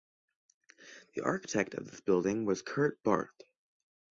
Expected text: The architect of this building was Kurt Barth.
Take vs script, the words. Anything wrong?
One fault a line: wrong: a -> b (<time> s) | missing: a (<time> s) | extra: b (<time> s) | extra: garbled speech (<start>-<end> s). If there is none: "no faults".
no faults